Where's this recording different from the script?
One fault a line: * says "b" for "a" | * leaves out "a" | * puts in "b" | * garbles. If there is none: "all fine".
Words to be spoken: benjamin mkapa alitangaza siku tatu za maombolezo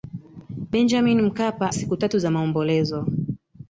* leaves out "alitangaza"